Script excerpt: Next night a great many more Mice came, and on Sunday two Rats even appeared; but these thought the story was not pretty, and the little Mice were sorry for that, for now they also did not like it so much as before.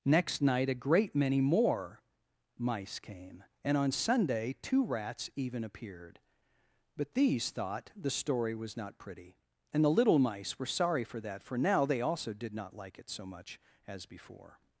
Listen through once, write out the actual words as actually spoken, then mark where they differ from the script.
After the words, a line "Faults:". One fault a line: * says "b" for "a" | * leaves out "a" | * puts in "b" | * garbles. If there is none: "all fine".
Next night a great many more Mice came, and on Sunday two Rats even appeared; but these thought the story was not pretty, and the little Mice were sorry for that, for now they also did not like it so much as before.
Faults:
all fine